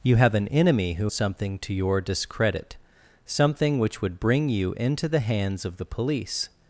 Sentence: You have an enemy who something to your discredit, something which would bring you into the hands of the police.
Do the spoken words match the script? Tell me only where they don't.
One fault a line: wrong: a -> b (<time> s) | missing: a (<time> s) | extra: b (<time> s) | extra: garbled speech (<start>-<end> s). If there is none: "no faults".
no faults